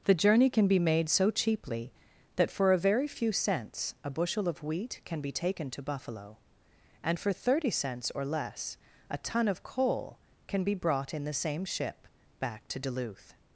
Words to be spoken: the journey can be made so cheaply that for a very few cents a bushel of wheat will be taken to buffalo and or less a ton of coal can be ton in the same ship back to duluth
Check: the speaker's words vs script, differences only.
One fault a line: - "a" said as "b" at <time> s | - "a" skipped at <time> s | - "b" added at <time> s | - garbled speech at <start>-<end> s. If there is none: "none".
- "will" said as "can" at 5.0 s
- "for thirty cents" added at 7.2 s
- "ton" said as "brought" at 10.7 s